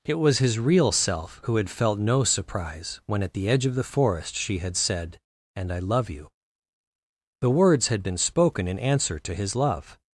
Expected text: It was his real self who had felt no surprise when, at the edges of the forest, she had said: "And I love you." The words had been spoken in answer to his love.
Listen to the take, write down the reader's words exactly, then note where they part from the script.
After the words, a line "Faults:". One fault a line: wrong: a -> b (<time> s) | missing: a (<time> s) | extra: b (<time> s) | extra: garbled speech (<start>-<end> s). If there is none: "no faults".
It was his real self who had felt no surprise when, at the edge of the forest, she had said: "And I love you." The words had been spoken in answer to his love.
Faults:
wrong: edges -> edge (3.5 s)